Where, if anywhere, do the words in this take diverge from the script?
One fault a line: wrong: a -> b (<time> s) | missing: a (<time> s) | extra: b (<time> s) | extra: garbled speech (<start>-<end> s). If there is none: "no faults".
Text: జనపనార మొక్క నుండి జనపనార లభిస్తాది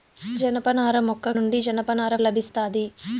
no faults